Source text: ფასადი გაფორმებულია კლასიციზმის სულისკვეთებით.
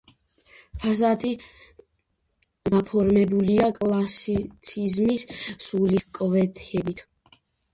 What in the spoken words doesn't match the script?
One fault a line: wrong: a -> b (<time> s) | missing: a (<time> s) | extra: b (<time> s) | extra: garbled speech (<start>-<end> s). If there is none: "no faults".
no faults